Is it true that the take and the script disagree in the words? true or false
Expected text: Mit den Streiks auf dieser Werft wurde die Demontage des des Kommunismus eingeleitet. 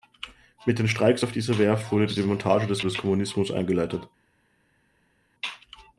false